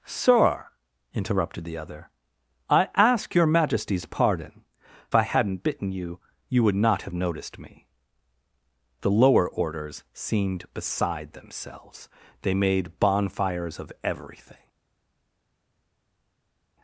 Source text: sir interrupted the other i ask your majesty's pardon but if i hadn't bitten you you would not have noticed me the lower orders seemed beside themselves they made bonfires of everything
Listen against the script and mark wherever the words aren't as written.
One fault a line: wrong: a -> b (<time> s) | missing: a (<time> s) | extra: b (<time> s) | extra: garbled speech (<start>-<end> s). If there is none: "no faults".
missing: but if (4.6 s)